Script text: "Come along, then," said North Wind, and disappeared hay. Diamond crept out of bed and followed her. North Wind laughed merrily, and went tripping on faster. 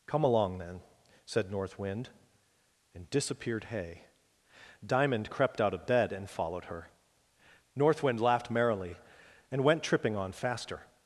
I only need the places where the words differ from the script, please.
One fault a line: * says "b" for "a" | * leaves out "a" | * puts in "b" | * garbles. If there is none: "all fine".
all fine